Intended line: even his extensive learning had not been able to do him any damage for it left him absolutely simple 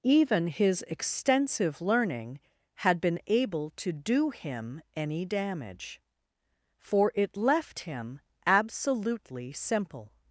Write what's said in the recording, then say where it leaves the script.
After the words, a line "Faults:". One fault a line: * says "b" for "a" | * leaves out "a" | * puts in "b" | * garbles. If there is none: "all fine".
even his extensive learning had been able to do him any damage for it left him absolutely simple
Faults:
* leaves out "not"